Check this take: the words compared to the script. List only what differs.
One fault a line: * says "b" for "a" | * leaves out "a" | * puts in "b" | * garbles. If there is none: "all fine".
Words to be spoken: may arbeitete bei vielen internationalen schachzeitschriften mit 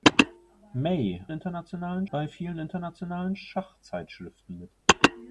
* says "internationalen" for "arbeitete"